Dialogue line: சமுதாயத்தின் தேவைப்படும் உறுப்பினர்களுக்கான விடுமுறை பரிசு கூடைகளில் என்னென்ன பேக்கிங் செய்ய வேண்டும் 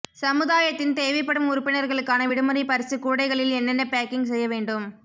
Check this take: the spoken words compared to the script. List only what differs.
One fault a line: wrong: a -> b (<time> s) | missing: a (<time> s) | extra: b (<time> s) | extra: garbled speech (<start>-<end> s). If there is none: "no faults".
no faults